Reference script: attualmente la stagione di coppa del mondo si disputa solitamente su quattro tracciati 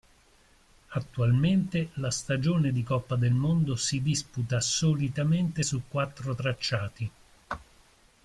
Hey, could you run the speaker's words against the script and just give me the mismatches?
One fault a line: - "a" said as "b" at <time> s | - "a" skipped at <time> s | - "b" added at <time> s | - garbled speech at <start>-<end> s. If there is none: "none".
none